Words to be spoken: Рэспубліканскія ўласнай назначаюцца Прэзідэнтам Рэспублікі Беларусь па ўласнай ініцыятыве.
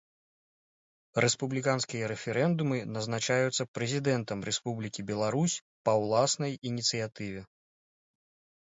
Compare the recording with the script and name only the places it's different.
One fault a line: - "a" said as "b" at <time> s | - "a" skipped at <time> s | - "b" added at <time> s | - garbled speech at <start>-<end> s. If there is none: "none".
- "ўласнай" said as "рэферэндумы" at 2.1 s